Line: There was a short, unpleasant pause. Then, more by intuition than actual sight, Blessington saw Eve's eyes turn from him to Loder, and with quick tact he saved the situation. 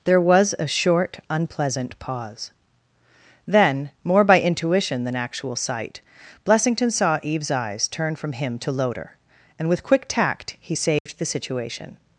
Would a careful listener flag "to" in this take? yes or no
no